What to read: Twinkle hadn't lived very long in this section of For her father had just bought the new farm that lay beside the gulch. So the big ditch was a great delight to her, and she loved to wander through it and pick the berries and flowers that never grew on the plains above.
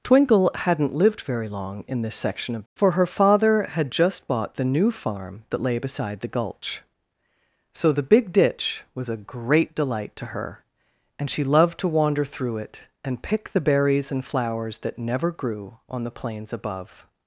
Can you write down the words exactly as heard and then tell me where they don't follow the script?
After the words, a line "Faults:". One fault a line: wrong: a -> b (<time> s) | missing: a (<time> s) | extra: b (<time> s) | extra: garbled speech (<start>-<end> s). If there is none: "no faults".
Twinkle hadn't lived very long in this section of For her father had just bought the new farm that lay beside the gulch. So the big ditch was a great delight to her, and she loved to wander through it and pick the berries and flowers that never grew on the plains above.
Faults:
no faults